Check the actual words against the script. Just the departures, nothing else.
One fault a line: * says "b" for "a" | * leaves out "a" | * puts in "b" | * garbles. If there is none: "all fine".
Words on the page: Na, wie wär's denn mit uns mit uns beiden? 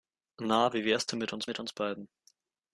all fine